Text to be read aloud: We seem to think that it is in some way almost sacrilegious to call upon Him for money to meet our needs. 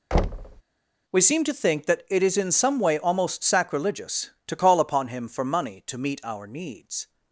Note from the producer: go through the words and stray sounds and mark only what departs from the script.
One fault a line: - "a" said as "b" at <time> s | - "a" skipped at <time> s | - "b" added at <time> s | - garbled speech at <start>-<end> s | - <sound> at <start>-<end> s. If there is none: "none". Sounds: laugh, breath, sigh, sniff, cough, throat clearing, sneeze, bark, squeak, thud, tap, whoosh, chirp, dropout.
- thud at 0.1-0.6 s